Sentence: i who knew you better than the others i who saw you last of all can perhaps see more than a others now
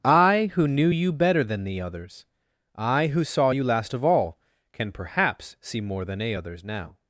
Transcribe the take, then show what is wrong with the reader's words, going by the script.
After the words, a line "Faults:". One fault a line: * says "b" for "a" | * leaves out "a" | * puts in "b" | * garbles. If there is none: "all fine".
i who knew you better than the others i who saw you last of all can perhaps see more than a others now
Faults:
all fine